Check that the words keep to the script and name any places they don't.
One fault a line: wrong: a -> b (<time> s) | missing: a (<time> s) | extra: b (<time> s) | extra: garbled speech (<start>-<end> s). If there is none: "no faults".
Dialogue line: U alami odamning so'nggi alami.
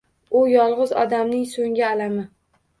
wrong: alami -> yolg'iz (0.5 s)